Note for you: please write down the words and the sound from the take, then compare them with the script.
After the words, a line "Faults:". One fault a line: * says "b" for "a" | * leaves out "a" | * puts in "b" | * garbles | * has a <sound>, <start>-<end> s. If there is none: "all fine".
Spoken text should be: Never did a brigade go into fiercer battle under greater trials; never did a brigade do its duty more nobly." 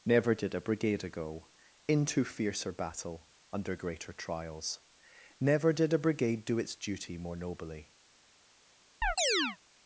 Never did a brigade ago into fiercer battle under greater trials; never did a brigade do its duty more nobly."
Faults:
* says "ago" for "go"
* has a chirp, 9.0-9.6 s